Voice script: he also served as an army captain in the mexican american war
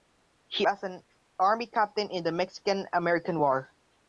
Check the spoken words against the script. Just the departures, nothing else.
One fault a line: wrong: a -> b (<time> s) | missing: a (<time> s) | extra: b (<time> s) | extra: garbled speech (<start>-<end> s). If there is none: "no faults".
missing: also served (0.7 s)